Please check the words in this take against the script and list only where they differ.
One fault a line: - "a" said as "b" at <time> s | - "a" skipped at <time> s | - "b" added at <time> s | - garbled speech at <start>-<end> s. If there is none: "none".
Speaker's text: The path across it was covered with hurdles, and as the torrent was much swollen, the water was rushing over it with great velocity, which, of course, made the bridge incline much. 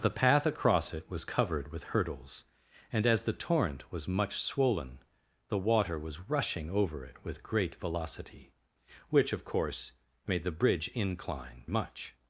none